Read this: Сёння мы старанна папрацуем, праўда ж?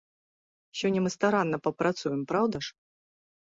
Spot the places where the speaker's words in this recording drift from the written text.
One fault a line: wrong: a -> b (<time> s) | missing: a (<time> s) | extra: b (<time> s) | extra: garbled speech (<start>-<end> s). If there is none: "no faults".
no faults